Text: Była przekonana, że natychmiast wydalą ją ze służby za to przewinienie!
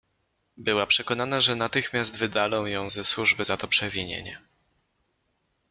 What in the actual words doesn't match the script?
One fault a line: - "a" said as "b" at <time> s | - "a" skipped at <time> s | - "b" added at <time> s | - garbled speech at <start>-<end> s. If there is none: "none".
none